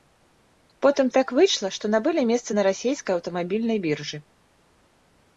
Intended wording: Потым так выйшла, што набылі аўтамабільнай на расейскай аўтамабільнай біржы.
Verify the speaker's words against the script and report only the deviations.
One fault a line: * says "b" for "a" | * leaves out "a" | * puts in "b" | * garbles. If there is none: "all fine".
* says "месца" for "аўтамабільнай"